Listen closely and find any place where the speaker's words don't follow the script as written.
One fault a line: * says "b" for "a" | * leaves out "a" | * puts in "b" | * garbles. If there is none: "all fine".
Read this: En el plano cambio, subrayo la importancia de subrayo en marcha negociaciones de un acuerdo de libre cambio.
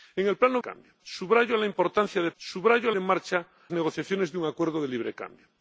all fine